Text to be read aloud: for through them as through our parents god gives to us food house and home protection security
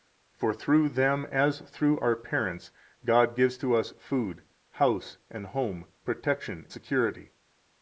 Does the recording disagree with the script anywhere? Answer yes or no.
no